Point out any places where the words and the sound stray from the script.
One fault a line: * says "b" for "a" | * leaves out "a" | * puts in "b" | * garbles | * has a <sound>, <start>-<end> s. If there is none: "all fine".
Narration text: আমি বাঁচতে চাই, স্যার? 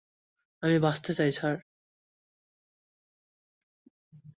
all fine